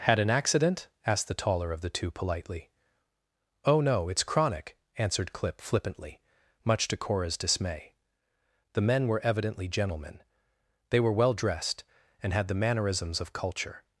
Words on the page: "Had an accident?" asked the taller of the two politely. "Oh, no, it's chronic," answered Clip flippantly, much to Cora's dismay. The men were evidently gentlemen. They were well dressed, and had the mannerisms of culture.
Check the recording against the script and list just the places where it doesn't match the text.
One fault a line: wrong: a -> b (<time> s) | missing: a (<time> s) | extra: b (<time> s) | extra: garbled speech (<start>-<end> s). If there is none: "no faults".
no faults